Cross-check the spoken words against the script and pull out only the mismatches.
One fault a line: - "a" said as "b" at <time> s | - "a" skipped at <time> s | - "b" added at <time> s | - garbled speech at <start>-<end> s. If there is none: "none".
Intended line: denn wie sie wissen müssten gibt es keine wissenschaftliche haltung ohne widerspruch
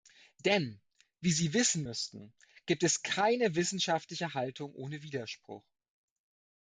none